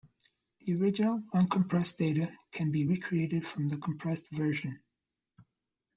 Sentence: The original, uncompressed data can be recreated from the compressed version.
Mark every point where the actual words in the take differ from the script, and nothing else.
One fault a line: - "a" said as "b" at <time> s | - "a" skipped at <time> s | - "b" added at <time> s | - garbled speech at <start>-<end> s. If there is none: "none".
none